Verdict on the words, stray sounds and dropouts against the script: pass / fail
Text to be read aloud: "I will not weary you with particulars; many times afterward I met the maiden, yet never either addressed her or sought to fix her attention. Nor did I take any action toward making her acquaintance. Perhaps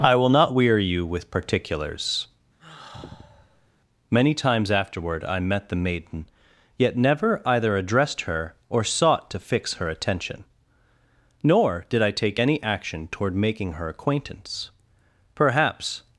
fail